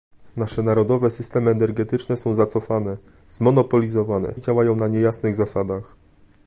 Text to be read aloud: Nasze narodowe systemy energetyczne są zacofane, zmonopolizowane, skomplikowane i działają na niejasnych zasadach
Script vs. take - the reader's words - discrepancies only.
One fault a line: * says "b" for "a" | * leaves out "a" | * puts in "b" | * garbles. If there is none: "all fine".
* leaves out "skomplikowane"